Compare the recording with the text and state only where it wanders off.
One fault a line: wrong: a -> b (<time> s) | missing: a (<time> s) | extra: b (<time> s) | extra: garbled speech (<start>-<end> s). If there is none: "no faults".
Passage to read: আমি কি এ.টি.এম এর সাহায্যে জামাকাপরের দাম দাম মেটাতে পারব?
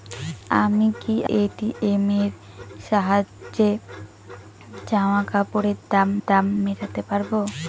no faults